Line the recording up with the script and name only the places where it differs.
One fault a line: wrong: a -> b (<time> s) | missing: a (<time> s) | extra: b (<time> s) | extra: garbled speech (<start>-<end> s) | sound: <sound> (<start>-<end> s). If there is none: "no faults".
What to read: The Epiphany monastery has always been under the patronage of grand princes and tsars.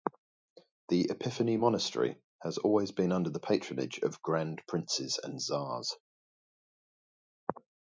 no faults